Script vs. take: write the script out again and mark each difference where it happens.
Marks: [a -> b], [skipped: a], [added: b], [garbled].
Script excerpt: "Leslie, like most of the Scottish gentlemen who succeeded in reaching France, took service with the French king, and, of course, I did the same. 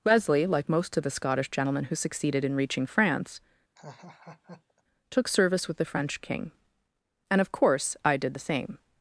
["Leslie, -> Wesley] like most of the Scottish gentlemen who succeeded in reaching France, took service with the French king, and, of course, I did the same.